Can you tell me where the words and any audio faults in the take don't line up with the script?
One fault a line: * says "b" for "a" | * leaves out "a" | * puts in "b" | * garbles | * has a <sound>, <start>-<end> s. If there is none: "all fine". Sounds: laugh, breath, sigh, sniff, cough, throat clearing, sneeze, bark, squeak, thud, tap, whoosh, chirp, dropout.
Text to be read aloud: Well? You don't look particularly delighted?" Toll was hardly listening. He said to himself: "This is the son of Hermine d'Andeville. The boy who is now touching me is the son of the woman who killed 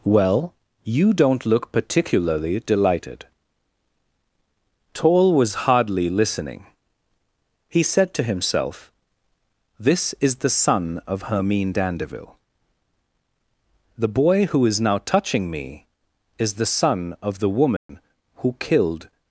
* has a dropout, 17.8-17.9 s